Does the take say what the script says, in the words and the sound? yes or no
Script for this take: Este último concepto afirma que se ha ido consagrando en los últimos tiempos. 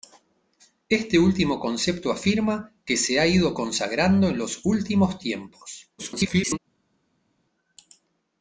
no